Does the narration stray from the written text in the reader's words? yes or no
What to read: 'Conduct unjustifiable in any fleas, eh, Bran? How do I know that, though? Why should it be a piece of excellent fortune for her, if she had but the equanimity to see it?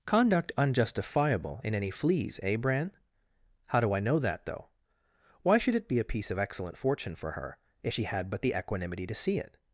no